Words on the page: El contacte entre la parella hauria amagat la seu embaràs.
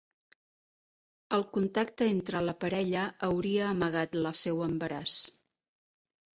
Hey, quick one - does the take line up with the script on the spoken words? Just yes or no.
yes